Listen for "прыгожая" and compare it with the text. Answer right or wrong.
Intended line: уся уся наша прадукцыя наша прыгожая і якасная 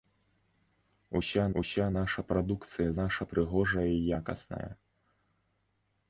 right